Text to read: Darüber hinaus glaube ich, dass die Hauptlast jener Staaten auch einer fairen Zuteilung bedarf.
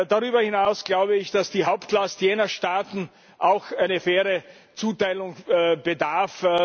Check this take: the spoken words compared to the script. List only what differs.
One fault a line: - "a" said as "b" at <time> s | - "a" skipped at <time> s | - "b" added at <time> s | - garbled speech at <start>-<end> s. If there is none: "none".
none